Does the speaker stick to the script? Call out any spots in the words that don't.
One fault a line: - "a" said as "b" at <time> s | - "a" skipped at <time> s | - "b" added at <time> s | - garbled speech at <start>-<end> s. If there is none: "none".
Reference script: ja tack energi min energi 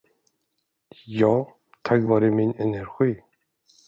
- "energi" said as "vare" at 2.1 s